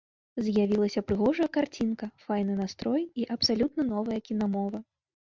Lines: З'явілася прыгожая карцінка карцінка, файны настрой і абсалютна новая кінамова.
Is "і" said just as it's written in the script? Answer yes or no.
yes